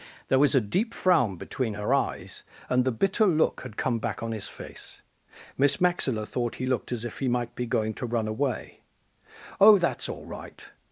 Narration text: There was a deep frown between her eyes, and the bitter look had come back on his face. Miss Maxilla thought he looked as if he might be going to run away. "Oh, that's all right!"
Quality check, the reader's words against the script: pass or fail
pass